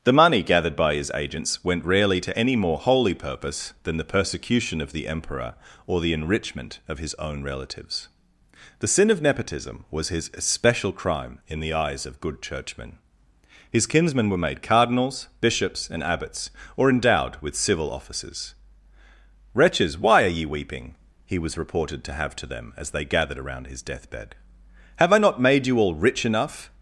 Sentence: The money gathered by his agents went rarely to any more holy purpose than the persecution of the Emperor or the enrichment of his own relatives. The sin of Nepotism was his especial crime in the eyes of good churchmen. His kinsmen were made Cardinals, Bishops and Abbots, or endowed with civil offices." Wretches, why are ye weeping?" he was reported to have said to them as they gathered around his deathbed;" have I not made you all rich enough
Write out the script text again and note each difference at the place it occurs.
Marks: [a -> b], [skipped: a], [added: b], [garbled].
The money gathered by his agents went rarely to any more holy purpose than the persecution of the Emperor or the enrichment of his own relatives. The sin of Nepotism was his especial crime in the eyes of good churchmen. His kinsmen were made Cardinals, Bishops and Abbots, or endowed with civil offices." Wretches, why are ye weeping?" he was reported to have [skipped: said] to them as they gathered around his deathbed;" have I not made you all rich enough